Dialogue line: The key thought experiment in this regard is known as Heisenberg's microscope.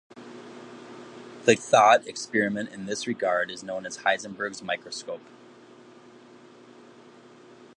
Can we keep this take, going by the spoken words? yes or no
no